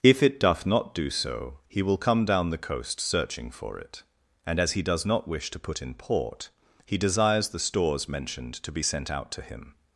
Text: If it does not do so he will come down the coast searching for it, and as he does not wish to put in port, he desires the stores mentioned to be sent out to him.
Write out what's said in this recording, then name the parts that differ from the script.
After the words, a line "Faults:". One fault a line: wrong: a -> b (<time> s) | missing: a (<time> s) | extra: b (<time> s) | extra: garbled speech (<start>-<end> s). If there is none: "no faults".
If it doth not do so he will come down the coast searching for it, and as he does not wish to put in port, he desires the stores mentioned to be sent out to him.
Faults:
wrong: does -> doth (0.4 s)